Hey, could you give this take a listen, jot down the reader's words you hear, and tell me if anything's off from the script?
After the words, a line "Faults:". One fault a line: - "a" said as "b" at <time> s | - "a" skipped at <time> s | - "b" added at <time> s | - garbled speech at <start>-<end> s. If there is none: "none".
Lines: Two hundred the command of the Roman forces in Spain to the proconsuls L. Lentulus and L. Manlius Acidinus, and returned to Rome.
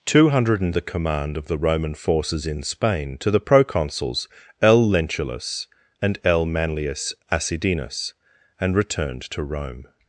Two hundred the command of the Roman forces in Spain to the proconsuls L. Lentulus and L. Manlius Acidinus, and returned to Rome.
Faults:
none